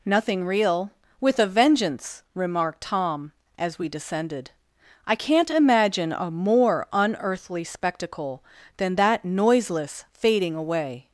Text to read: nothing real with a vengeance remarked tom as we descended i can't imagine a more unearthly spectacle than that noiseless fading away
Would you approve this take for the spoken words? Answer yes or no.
yes